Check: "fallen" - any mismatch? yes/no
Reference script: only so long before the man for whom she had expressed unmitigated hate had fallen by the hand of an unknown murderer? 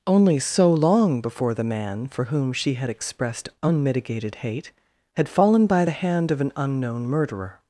no